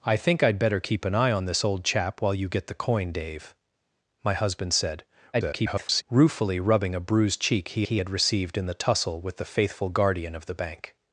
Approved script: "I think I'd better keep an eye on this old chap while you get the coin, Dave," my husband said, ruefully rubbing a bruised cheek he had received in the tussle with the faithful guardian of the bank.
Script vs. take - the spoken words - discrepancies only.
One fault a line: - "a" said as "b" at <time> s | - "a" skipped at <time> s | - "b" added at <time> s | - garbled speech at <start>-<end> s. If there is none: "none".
- garbled speech at 5.3-6.0 s
- "he" added at 7.8 s